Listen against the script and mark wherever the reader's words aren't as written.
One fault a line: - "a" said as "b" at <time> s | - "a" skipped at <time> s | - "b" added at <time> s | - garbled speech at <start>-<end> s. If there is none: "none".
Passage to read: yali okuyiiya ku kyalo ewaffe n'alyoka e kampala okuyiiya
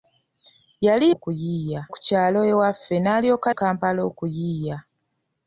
none